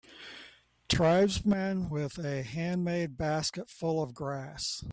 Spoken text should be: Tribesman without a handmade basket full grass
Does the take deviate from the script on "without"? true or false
true